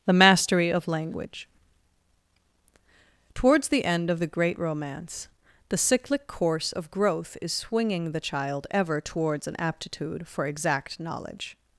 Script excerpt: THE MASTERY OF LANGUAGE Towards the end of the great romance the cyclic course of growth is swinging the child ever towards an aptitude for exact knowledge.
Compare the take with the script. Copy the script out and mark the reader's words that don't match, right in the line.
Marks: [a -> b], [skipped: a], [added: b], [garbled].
THE MASTERY OF LANGUAGE Towards the end of the great romance the cyclic course of growth is swinging the child ever towards an aptitude for exact knowledge.